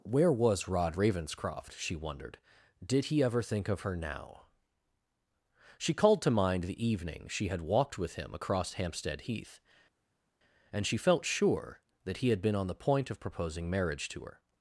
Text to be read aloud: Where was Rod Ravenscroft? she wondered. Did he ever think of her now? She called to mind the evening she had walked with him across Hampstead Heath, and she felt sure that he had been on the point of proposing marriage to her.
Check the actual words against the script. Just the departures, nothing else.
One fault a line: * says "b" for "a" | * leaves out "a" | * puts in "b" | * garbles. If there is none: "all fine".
all fine